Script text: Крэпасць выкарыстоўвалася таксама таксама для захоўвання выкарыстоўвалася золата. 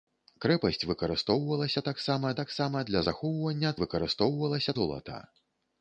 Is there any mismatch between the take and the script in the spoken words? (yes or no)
no